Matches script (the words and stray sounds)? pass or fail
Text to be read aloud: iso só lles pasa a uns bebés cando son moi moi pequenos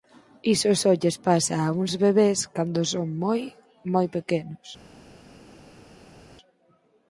pass